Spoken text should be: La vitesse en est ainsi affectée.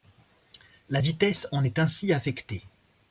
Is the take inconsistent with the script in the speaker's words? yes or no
no